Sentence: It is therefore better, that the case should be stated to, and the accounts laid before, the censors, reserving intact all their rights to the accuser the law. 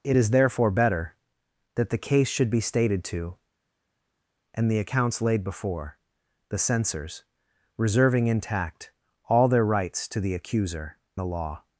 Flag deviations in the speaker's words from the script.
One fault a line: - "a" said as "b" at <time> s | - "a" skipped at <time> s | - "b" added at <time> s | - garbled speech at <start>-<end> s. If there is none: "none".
none